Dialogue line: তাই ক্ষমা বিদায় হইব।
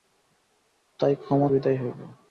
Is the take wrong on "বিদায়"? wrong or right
right